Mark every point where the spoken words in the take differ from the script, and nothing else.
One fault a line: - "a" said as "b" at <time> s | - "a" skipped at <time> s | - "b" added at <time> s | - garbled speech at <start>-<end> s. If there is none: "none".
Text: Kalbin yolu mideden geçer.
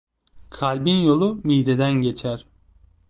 none